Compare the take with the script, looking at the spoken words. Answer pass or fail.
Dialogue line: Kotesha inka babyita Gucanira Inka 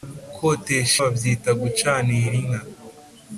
fail